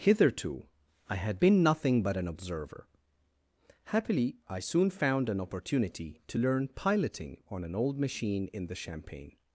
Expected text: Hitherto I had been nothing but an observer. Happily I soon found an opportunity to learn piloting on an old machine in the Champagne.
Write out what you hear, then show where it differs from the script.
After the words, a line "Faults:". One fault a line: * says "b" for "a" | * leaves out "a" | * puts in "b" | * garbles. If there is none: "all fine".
Hitherto I had been nothing but an observer. Happily I soon found an opportunity to learn piloting on an old machine in the Champagne.
Faults:
all fine